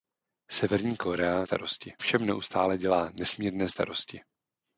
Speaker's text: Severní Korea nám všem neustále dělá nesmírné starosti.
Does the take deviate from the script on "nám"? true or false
true